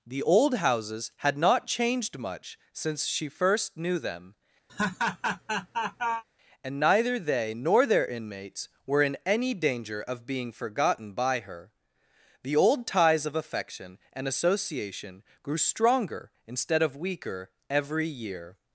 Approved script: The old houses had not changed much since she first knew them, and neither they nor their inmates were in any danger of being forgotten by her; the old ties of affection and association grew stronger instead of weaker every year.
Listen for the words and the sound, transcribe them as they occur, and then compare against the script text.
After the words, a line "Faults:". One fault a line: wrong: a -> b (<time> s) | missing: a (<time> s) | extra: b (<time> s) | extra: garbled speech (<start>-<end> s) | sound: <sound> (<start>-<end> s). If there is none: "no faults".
The old houses had not changed much since she first knew them, and neither they nor their inmates were in any danger of being forgotten by her; the old ties of affection and association grew stronger instead of weaker every year.
Faults:
sound: laugh (4.7-6.2 s)